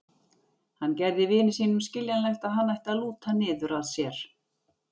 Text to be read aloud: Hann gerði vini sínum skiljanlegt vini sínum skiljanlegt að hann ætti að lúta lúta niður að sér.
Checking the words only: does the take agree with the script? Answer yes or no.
no